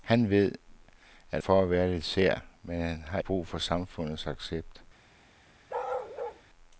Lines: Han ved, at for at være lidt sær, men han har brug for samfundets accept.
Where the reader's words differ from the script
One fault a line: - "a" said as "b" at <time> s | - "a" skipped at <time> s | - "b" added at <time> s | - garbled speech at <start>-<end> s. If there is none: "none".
none